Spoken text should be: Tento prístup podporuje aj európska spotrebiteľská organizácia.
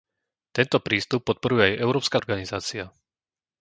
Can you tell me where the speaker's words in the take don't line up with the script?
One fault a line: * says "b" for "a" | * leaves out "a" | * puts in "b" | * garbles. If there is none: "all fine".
* leaves out "spotrebiteľská"